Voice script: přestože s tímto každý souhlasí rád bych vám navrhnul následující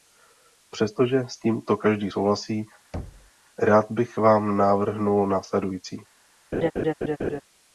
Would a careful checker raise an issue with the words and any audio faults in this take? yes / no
yes